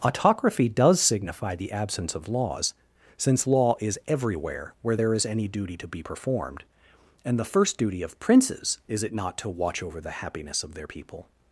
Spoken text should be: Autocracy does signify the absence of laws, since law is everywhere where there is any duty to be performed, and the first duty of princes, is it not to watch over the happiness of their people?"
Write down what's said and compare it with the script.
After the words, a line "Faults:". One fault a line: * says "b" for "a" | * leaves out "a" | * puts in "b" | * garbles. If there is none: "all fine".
Autocracy does signify the absence of laws, since law is everywhere where there is any duty to be performed, and the first duty of princes, is it not to watch over the happiness of their people?"
Faults:
all fine